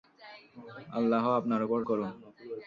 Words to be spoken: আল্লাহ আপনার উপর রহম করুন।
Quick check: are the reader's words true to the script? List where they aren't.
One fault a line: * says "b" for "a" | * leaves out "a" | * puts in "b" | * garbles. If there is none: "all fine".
* leaves out "রহম"